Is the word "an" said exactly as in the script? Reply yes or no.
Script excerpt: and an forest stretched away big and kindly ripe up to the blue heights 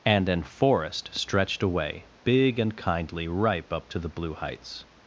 yes